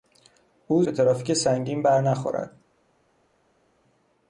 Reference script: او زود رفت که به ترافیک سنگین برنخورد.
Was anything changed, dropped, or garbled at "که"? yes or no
yes